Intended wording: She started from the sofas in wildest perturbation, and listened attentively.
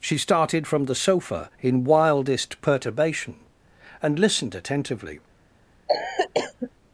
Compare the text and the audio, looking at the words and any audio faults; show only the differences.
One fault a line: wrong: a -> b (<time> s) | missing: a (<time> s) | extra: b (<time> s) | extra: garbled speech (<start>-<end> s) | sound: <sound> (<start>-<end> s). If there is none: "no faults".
wrong: sofas -> sofa (0.9 s)
sound: cough (5.9-6.7 s)